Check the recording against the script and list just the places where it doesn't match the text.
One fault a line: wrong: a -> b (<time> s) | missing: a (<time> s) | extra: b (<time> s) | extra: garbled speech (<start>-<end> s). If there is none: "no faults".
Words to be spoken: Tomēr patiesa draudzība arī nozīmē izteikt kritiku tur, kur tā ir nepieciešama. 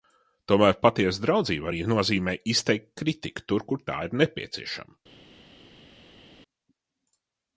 no faults